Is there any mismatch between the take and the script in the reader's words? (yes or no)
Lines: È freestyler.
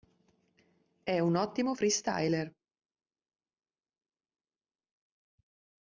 yes